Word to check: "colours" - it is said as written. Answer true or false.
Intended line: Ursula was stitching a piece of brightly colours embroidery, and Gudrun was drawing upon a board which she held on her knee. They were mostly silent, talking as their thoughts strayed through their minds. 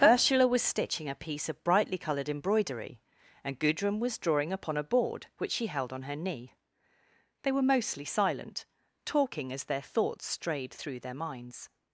false